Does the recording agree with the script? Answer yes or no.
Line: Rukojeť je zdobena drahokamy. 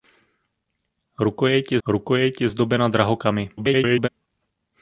no